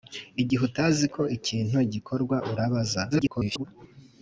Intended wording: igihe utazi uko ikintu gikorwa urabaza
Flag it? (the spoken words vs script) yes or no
yes